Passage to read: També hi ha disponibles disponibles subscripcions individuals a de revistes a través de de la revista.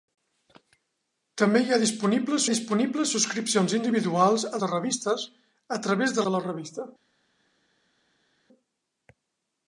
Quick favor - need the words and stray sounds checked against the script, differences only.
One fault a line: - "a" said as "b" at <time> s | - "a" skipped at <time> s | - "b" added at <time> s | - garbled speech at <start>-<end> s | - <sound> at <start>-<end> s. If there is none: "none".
none